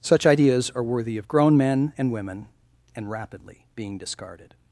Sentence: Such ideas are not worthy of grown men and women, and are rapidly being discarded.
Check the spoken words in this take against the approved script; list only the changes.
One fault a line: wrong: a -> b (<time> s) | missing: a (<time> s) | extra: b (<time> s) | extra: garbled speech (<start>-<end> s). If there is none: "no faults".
missing: not (0.8 s)
missing: are (3.1 s)